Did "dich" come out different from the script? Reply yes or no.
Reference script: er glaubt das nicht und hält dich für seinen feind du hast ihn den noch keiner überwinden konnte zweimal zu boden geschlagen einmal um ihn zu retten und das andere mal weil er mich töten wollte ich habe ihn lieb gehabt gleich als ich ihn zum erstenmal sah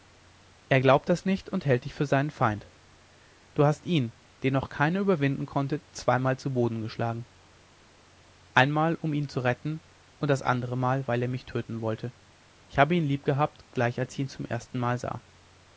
no